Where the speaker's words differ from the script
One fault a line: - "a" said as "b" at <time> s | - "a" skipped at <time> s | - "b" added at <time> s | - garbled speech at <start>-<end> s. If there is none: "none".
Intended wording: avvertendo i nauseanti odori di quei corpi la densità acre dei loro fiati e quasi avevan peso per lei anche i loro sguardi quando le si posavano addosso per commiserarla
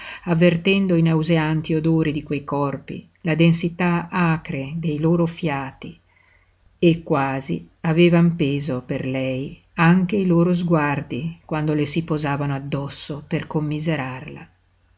none